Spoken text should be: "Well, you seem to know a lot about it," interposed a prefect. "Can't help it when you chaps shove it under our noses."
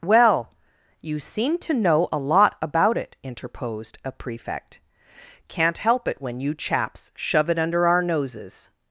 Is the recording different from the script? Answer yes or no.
no